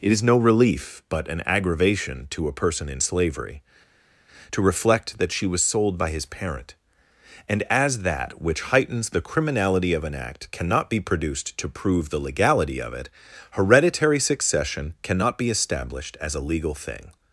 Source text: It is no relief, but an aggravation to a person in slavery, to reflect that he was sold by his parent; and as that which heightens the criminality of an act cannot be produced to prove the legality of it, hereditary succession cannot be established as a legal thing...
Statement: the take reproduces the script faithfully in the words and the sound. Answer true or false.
false